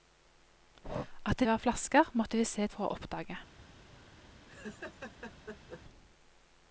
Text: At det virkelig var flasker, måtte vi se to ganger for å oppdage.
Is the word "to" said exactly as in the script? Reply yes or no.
no